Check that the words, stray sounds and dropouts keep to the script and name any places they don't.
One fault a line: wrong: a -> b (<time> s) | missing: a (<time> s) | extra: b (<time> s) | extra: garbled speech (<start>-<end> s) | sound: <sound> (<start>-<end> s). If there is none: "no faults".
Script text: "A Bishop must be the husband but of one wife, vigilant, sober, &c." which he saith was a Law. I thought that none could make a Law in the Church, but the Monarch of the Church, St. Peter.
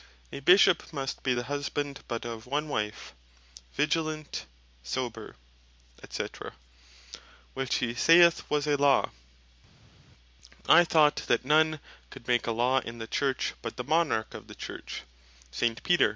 no faults